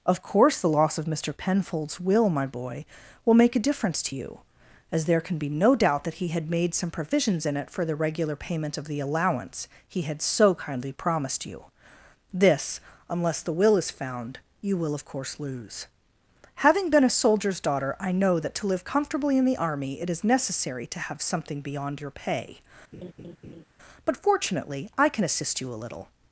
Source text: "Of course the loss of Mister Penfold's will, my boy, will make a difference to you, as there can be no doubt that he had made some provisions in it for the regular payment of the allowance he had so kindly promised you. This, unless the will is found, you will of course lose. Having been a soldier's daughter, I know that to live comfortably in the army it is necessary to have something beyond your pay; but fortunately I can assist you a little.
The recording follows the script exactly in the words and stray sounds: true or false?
false